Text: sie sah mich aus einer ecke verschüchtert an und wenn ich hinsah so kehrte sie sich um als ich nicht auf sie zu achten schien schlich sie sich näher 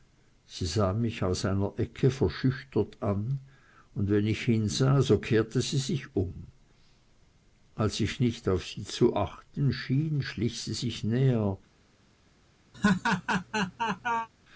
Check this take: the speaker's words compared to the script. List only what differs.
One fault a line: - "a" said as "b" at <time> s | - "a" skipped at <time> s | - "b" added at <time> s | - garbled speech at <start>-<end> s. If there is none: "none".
none